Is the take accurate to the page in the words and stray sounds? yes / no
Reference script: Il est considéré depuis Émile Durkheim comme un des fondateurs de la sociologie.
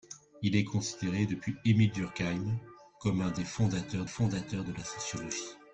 no